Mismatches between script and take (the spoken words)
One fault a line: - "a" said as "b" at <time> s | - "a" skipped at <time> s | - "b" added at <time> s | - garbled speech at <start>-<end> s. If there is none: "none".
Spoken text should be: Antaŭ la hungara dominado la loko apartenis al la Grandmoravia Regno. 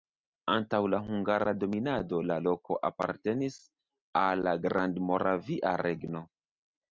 none